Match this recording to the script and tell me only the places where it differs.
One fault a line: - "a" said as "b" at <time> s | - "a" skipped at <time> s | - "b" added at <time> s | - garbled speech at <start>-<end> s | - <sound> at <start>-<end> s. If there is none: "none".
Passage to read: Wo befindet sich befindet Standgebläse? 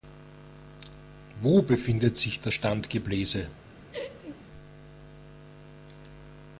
- "befindet" said as "das" at 2.4 s
- laugh at 3.9-4.4 s